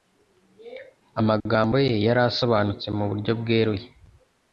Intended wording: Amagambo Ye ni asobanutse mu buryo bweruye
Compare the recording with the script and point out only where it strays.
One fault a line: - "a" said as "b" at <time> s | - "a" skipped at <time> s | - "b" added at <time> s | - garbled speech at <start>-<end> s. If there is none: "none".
- "ni" said as "yari" at 2.0 s